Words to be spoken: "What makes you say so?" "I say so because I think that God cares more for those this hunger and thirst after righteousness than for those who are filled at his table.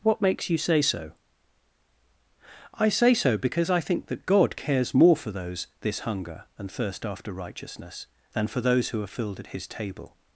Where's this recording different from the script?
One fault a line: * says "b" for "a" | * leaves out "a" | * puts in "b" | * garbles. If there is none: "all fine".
all fine